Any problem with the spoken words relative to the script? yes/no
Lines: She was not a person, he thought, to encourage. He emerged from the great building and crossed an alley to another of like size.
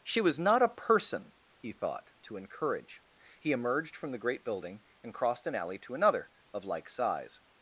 no